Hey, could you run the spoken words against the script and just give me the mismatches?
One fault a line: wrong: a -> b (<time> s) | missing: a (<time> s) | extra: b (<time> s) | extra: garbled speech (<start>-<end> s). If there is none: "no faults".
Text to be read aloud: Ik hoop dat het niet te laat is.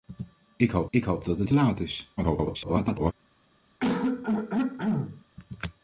extra: ik hoop (0.9 s)
missing: niet (1.5 s)
extra: garbled speech (2.2-3.1 s)